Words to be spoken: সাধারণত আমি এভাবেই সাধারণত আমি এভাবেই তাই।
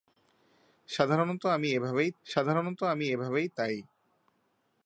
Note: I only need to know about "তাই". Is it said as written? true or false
true